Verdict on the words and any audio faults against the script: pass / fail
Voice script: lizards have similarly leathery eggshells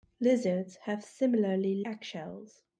fail